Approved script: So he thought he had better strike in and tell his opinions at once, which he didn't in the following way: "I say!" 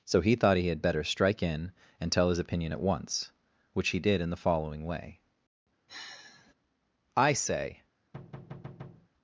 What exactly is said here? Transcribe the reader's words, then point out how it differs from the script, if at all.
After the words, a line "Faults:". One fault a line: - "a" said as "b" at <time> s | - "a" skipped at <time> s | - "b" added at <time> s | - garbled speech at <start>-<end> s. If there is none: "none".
So he thought he had better strike in and tell his opinion at once, which he did in the following way: "I say!"
Faults:
- "opinions" said as "opinion" at 2.4 s
- "didn't" said as "did" at 4.0 s